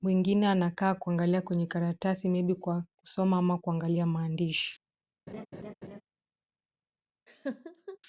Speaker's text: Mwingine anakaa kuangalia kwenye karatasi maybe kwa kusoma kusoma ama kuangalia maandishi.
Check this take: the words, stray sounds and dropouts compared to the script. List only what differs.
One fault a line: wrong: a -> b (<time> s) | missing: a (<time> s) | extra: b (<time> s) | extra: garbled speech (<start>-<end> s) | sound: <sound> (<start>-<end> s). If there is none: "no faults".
missing: kusoma (3.4 s)
sound: laugh (5.3-6.0 s)
sound: laugh (7.3-8.0 s)